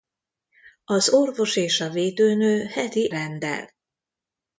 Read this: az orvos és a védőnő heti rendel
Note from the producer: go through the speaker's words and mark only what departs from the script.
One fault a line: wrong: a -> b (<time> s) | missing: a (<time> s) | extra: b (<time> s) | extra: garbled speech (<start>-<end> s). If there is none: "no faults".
no faults